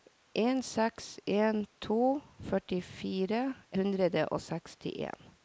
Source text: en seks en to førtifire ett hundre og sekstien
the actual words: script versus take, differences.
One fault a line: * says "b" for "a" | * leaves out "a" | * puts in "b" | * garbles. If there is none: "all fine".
* leaves out "ett"